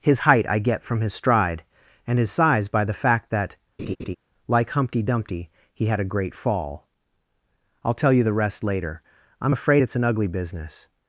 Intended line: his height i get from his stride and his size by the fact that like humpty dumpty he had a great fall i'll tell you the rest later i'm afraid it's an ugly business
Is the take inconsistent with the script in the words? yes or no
no